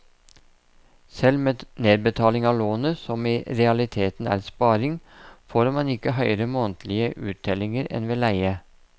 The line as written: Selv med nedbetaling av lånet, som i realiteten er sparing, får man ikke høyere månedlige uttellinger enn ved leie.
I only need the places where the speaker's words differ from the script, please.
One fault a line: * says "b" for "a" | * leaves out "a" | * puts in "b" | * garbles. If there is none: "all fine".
all fine